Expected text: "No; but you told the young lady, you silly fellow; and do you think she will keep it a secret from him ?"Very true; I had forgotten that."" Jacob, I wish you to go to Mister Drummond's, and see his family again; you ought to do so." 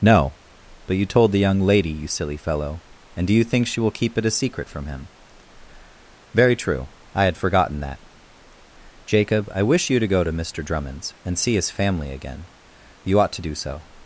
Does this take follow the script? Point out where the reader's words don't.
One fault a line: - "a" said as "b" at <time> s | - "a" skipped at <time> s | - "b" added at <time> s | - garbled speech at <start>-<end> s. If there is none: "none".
none